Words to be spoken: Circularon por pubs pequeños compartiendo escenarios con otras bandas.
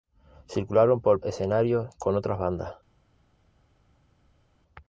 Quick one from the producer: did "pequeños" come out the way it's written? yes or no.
no